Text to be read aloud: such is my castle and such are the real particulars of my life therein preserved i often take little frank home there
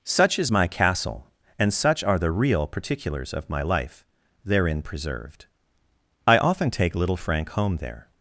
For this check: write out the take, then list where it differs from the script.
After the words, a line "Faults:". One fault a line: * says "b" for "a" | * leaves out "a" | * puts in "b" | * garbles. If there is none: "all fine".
such is my castle and such are the real particulars of my life therein preserved i often take little frank home there
Faults:
all fine